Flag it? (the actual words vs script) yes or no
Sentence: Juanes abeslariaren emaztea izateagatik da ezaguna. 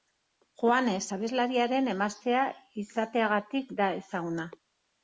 no